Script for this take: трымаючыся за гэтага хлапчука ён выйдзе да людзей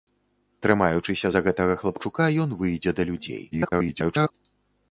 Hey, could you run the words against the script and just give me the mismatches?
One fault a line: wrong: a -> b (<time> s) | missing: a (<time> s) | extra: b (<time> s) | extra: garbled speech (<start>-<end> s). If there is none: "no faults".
extra: garbled speech (3.5-4.3 s)